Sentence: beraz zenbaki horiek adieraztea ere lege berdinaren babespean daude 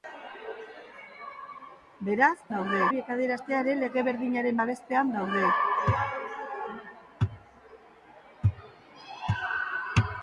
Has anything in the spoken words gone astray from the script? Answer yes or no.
yes